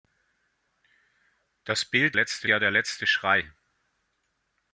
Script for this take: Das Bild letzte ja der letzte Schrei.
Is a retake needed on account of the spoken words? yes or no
no